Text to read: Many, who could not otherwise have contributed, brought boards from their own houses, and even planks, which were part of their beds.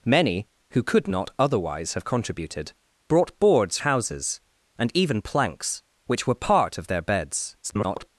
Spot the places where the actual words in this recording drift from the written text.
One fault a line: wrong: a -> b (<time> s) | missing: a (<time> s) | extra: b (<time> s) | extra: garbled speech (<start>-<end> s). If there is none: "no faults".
missing: from their own (3.8 s)
extra: garbled speech (7.6-8.1 s)